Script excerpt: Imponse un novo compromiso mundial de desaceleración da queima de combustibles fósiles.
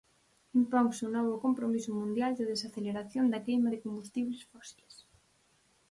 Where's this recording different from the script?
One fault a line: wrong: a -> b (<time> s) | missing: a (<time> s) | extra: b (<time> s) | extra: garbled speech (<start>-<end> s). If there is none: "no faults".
no faults